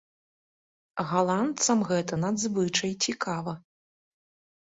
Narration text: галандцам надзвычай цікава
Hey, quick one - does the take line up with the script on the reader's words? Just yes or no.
no